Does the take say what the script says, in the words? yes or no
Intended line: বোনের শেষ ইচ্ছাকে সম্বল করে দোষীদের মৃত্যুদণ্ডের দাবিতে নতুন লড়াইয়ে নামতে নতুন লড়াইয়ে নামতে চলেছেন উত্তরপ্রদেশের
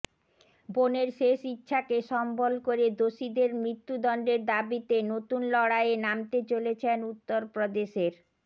no